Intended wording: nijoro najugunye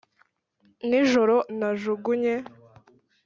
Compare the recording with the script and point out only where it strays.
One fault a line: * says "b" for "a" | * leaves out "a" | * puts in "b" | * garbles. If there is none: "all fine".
all fine